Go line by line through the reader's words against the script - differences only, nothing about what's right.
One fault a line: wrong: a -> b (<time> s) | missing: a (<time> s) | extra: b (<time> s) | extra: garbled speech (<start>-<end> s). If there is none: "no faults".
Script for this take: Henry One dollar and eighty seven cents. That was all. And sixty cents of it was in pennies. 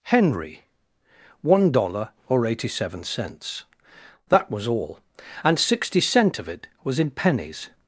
wrong: and -> or (2.3 s)
wrong: cents -> cent (6.0 s)